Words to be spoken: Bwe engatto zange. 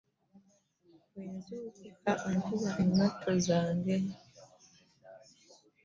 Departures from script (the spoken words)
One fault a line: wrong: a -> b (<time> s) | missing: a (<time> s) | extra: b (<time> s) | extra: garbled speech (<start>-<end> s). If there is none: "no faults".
extra: nzuukuka nkuba (1.4 s)